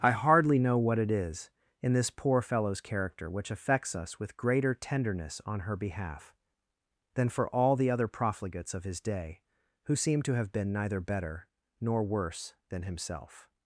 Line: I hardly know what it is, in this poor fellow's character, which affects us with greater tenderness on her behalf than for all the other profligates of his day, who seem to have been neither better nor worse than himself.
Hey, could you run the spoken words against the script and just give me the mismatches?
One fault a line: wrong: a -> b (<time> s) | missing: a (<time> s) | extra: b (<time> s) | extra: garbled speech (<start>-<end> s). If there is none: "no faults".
no faults